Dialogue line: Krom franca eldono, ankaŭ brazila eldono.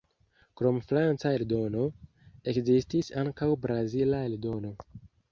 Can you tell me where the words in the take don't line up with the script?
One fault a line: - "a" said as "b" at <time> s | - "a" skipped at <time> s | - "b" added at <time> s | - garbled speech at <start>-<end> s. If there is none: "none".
- "ekzistis" added at 2.5 s